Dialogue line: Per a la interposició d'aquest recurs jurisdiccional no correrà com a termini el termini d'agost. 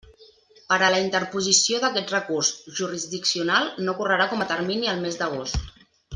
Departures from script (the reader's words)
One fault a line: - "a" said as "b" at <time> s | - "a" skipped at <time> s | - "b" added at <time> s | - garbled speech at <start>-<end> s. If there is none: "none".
- "termini" said as "mes" at 5.1 s